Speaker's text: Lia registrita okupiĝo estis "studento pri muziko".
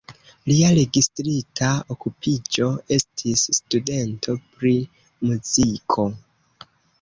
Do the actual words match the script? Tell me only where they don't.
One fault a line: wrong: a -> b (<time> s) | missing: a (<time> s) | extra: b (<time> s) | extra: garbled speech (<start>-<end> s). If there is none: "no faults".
no faults